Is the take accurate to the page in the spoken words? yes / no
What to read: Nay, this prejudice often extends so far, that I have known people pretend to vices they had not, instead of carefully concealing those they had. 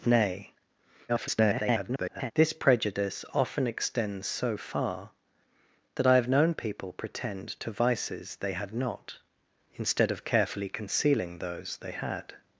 no